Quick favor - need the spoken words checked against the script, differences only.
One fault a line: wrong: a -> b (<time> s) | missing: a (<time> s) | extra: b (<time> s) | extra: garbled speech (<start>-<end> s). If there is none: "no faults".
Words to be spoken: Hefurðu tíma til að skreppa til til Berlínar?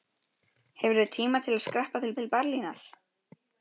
no faults